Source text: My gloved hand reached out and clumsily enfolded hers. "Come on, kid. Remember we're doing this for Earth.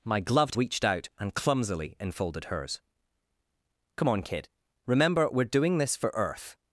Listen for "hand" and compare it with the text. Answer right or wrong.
wrong